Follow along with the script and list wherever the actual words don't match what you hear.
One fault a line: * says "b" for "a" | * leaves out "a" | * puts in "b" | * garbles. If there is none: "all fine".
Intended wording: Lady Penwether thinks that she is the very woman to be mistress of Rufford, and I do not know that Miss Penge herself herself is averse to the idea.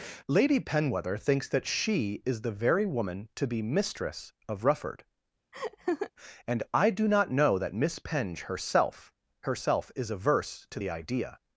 all fine